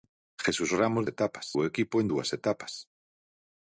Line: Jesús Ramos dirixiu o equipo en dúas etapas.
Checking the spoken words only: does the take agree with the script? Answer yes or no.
no